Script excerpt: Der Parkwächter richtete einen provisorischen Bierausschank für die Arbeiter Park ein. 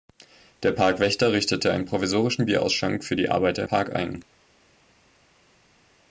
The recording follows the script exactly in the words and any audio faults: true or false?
true